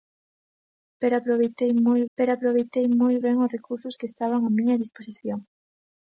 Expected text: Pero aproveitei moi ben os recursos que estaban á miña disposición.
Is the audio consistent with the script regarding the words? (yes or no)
no